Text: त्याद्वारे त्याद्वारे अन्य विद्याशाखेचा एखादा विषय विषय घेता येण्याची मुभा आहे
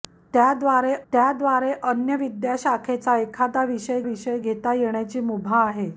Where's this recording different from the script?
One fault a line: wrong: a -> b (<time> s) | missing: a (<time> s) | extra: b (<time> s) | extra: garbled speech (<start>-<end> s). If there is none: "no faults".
no faults